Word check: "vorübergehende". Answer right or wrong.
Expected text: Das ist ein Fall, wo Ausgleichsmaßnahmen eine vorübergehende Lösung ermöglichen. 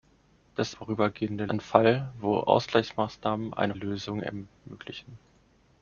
wrong